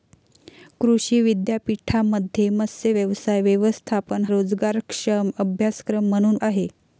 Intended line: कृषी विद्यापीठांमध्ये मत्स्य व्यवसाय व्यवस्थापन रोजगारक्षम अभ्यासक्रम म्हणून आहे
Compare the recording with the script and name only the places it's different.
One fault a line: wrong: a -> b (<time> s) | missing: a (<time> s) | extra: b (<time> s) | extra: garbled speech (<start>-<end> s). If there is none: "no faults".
no faults